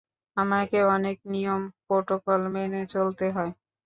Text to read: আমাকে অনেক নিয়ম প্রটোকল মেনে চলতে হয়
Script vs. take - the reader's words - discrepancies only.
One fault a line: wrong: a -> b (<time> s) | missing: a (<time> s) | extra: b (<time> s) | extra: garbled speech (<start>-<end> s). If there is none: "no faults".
no faults